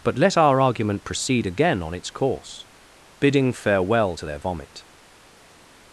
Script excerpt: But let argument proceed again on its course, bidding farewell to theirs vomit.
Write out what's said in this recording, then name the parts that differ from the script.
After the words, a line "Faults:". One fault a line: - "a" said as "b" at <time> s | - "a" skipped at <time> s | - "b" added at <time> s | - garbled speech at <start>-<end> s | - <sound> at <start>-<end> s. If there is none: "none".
But let our argument proceed again on its course, bidding farewell to their vomit.
Faults:
- "our" added at 0.4 s
- "theirs" said as "their" at 4.2 s